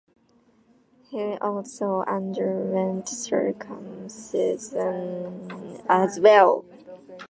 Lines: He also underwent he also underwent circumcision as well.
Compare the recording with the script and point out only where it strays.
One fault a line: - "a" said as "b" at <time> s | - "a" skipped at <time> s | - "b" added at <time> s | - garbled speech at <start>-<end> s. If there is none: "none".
- "he also underwent" skipped at 3.1 s